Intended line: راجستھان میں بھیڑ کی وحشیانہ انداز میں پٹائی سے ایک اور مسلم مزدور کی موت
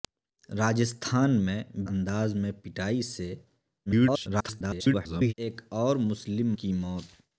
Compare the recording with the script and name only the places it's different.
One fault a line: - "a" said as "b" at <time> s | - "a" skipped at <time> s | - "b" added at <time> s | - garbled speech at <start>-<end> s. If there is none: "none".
- "بھیڑ کی وحشیانہ" skipped at 1.6 s
- garbled speech at 3.9-5.3 s
- "مزدور" skipped at 6.5 s